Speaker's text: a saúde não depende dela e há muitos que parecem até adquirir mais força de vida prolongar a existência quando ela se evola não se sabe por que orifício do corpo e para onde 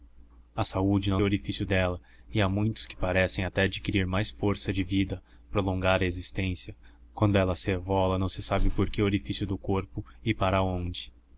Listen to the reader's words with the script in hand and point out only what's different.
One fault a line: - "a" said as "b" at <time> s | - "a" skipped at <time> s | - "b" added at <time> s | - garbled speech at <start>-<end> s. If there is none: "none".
- "depende" said as "orifício" at 1.2 s